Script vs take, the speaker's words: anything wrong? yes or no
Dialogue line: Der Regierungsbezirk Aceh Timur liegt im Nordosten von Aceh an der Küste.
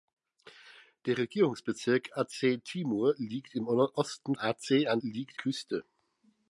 yes